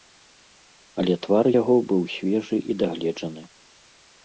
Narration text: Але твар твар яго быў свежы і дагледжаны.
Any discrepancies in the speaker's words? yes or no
yes